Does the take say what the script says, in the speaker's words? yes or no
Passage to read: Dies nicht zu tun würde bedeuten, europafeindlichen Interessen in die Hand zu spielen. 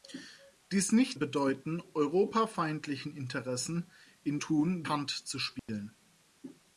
no